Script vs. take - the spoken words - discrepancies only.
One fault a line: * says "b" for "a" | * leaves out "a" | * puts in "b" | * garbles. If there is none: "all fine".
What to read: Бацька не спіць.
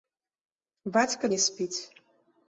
all fine